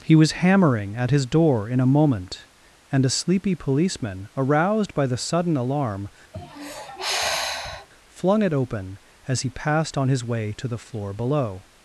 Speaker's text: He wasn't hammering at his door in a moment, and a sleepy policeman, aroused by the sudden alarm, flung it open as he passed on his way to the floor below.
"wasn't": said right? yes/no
no